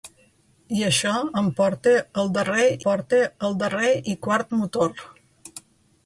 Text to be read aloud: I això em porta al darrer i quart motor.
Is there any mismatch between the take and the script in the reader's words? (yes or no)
yes